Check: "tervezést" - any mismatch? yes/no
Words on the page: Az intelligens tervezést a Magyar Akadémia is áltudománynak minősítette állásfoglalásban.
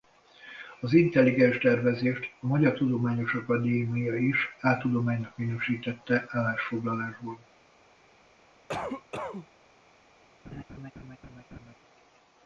no